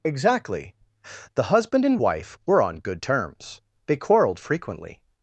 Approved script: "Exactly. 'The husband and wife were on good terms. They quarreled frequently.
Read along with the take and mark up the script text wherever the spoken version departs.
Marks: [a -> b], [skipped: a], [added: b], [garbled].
"Exactly. 'The husband and wife were on good terms. They quarreled frequently.